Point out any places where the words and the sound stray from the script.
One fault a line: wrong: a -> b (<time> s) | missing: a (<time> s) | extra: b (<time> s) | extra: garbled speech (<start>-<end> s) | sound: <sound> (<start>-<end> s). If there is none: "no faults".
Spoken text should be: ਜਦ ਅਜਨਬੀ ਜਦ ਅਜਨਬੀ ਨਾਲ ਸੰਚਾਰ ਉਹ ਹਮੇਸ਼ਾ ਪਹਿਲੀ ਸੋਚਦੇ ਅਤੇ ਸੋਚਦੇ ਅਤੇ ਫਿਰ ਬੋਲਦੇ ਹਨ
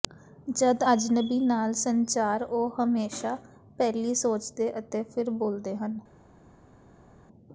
missing: ਜਦ ਅਜਨਬੀ (1.4 s)
missing: ਸੋਚਦੇ ਅਤੇ (5.0 s)